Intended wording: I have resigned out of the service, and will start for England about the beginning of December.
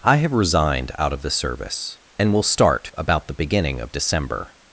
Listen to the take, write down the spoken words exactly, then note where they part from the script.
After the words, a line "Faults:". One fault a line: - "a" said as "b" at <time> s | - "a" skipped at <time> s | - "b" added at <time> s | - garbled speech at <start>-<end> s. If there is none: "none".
I have resigned out of the service, and will start about the beginning of December.
Faults:
- "for England" skipped at 2.9 s